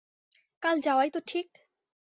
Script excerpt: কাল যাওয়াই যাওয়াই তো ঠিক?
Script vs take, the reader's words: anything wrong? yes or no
yes